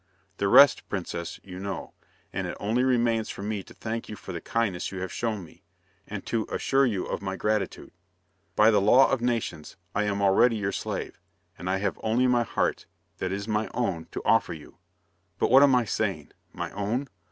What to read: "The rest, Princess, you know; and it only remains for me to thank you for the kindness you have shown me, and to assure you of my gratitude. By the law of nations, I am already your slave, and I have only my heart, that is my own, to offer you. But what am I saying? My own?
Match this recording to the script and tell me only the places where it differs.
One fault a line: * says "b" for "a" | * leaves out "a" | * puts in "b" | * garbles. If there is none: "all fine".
all fine